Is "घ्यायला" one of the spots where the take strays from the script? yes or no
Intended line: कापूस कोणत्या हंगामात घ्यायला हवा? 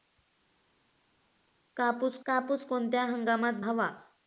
yes